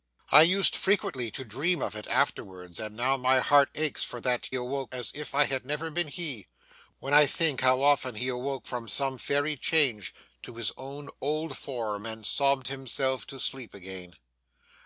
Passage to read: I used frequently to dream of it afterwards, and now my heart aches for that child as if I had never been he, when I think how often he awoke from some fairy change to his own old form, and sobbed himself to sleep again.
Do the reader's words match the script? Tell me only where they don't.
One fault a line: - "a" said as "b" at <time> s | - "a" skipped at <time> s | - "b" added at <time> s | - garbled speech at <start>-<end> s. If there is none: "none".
- "child" said as "awoke" at 4.5 s